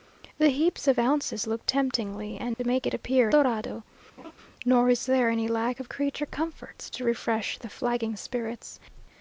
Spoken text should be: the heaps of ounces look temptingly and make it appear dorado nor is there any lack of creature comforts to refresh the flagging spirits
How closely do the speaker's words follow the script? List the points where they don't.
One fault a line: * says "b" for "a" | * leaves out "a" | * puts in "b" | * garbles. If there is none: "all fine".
all fine